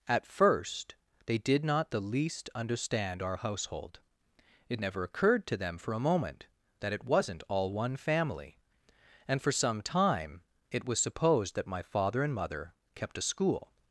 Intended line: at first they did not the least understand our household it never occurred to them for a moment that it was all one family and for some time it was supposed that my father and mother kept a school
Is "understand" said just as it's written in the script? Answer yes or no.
yes